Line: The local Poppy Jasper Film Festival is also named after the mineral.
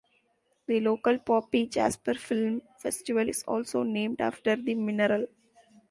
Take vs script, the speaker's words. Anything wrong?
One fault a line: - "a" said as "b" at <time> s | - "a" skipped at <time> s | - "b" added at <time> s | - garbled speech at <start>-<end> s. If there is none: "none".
none